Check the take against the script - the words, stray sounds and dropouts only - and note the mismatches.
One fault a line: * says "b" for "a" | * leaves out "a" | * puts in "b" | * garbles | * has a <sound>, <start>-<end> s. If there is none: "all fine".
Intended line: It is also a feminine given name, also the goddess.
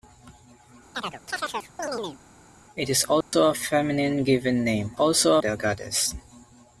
* has a chirp, 0.9-2.2 s
* has a dropout, 3.2-3.3 s